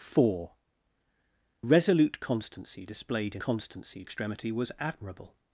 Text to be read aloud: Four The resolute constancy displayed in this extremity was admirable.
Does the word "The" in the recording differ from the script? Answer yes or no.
yes